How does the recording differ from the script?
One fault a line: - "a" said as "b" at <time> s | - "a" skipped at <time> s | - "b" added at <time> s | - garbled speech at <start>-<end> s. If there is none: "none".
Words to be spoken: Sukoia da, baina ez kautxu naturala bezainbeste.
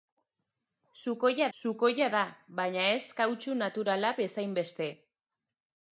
- "sukoia" added at 1.6 s